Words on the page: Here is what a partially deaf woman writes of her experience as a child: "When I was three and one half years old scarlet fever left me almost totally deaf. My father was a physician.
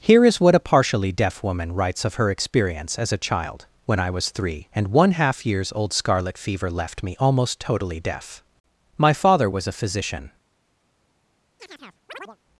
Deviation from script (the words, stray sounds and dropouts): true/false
true